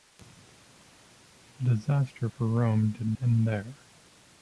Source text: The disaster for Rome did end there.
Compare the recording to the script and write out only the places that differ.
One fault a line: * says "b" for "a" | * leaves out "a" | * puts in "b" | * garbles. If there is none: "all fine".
all fine